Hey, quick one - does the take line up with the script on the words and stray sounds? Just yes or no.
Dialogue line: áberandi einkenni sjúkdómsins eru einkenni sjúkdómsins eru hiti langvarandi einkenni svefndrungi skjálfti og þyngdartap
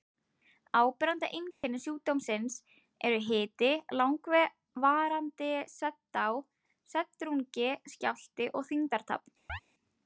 no